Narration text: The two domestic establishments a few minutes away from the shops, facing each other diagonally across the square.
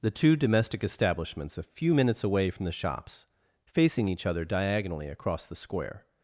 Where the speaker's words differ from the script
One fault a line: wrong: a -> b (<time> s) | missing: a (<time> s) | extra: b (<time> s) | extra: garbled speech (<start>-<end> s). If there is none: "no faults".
no faults